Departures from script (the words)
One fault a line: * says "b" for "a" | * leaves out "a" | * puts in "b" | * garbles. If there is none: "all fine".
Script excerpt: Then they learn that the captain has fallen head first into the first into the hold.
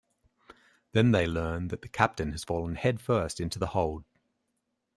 * leaves out "first into the"